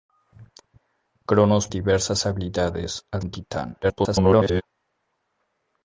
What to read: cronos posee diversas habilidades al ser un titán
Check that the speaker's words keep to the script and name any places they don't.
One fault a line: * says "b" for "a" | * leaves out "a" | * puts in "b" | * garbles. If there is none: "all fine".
* leaves out "posee"
* leaves out "ser"
* garbles